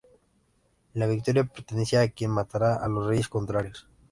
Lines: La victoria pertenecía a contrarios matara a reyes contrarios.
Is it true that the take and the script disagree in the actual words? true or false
true